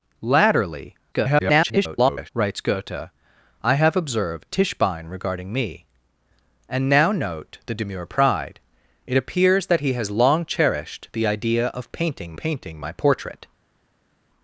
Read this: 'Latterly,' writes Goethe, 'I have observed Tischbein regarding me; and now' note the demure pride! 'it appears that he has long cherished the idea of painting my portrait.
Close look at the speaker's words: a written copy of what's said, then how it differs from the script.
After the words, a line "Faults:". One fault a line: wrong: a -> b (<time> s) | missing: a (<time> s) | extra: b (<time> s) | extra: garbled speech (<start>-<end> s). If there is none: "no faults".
'Latterly,' [garbled] writes Goethe, 'I have observed Tischbein regarding me; and now' note the demure pride! 'it appears that he has long cherished the idea of painting painting my portrait.
Faults:
extra: garbled speech (1.1-2.3 s)
extra: painting (12.3 s)